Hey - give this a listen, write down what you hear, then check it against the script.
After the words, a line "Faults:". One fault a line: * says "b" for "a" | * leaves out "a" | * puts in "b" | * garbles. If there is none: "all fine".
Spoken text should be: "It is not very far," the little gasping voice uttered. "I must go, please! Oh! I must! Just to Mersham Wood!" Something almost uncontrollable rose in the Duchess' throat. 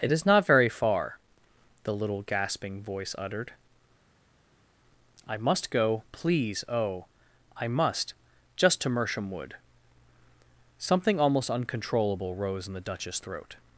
"It is not very far," the little gasping voice uttered. "I must go, please! Oh! I must! Just to Mersham Wood!" Something almost uncontrollable rose in the Duchess' throat.
Faults:
all fine